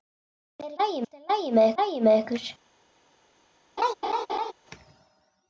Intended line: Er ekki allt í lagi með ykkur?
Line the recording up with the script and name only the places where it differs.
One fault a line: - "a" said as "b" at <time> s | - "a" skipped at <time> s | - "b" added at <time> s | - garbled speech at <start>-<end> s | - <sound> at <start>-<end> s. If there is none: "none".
- "ekki" said as "lagi" at 0.8 s
- "lagi með" added at 1.8 s
- laugh at 3.8-4.5 s